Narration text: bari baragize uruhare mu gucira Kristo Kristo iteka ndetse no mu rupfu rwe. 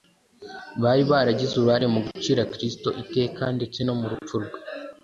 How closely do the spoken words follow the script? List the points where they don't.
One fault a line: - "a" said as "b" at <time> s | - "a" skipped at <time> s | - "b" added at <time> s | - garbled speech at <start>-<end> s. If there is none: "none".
- "Kristo" skipped at 2.9 s